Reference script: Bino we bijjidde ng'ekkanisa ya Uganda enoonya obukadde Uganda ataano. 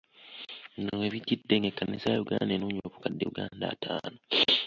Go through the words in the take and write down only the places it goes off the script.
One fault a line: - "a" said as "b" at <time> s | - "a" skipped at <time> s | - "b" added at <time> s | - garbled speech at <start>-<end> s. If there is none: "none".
none